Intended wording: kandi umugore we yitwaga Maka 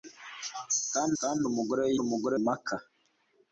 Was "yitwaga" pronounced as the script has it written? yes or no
no